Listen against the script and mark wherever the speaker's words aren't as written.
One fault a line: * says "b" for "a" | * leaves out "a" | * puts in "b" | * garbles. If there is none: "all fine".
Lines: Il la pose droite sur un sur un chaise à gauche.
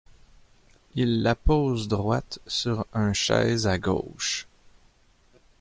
* leaves out "sur un"